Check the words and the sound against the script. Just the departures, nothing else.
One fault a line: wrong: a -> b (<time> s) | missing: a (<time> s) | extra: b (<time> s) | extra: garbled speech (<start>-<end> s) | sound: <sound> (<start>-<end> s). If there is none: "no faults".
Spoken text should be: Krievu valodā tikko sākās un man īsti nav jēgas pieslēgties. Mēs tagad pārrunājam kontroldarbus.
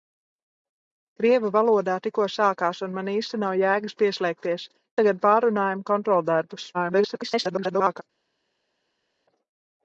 missing: Mēs (4.7 s)
extra: garbled speech (6.7-8.0 s)